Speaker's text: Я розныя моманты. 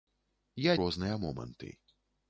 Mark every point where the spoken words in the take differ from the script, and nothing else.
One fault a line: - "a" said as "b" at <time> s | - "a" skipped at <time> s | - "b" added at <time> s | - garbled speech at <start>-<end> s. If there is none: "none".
none